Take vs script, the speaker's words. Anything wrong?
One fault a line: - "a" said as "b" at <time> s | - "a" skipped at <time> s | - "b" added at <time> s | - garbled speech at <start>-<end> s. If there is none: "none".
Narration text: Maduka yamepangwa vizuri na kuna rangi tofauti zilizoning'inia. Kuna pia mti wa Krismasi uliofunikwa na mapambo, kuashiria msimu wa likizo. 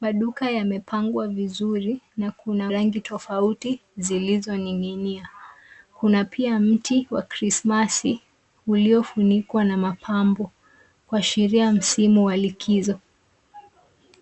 none